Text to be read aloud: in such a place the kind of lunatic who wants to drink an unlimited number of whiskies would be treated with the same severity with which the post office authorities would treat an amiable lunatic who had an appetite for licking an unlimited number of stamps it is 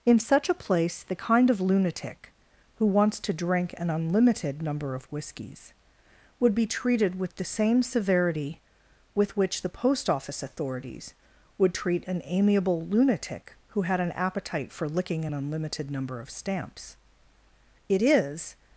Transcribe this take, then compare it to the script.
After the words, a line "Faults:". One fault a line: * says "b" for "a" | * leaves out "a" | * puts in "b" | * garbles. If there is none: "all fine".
in such a place the kind of lunatic who wants to drink an unlimited number of whiskies would be treated with the same severity with which the post office authorities would treat an amiable lunatic who had an appetite for licking an unlimited number of stamps it is
Faults:
all fine